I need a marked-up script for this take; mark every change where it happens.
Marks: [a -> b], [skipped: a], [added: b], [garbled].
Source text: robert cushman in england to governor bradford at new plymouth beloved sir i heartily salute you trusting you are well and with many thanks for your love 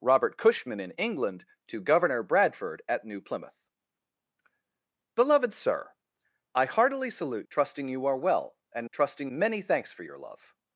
robert cushman in england to governor bradford at new plymouth beloved sir i heartily salute [skipped: you] trusting you are well and [with -> trusting] many thanks for your love